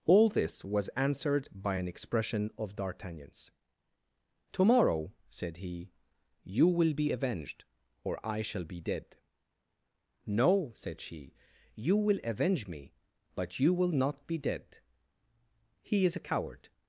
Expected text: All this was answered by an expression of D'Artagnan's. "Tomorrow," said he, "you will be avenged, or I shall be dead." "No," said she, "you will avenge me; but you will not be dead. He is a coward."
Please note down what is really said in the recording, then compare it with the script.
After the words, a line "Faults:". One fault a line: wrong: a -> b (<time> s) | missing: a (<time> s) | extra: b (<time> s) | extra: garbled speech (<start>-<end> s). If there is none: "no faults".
All this was answered by an expression of D'Artagnan's. "Tomorrow," said he, "you will be avenged, or I shall be dead." "No," said she, "you will avenge me; but you will not be dead. He is a coward."
Faults:
no faults